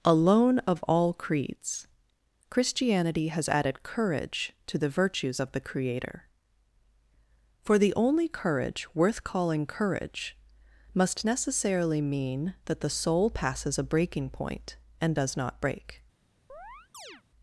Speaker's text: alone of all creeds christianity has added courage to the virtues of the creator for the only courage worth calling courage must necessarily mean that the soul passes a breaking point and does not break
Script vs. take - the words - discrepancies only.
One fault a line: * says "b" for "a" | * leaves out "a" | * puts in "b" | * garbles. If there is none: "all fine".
all fine